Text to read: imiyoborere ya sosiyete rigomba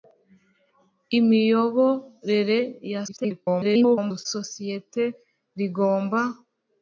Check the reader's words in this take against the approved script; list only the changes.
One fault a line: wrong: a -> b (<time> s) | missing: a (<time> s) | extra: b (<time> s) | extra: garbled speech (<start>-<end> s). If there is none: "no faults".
extra: garbled speech (3.1-4.3 s)